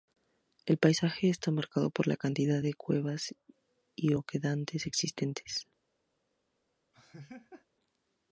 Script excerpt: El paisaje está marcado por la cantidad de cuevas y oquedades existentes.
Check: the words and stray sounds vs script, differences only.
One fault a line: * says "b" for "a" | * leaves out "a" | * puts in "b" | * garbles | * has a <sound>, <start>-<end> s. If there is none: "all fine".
* has a laugh, 6.9-7.7 s